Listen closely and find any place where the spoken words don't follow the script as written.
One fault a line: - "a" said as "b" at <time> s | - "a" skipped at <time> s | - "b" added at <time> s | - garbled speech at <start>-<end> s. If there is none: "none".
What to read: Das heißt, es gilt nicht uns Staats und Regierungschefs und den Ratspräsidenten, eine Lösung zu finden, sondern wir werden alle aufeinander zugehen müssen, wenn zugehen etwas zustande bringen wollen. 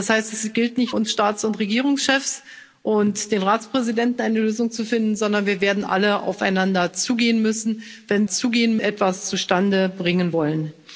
none